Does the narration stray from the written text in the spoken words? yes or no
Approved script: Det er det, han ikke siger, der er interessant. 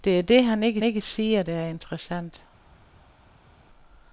yes